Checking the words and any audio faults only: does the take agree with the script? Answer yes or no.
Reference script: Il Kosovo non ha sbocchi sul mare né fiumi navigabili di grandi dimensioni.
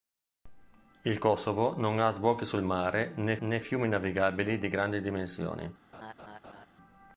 no